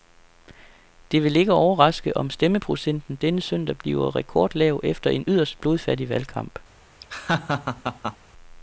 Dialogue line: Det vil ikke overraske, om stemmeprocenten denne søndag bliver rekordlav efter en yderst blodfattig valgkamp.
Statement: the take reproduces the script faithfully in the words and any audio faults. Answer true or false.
false